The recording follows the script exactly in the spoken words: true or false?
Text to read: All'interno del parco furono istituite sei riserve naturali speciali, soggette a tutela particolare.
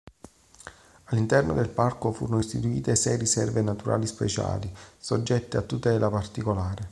true